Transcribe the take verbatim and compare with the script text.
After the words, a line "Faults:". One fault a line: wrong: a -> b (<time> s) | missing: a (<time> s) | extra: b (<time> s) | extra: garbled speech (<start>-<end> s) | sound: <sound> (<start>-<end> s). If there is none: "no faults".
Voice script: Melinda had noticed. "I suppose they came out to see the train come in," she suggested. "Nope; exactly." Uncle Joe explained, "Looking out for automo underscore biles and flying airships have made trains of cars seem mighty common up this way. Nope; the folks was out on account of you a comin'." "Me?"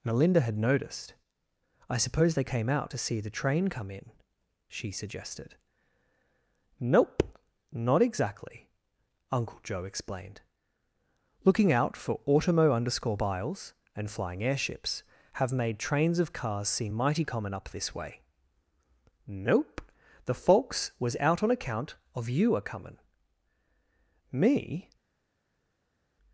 Melinda had noticed. "I suppose they came out to see the train come in," she suggested. "Nope; not exactly." Uncle Joe explained, "Looking out for automo underscore biles and flying airships have made trains of cars seem mighty common up this way. Nope; the folks was out on account of you a comin'." "Me?"
Faults:
extra: not (7.7 s)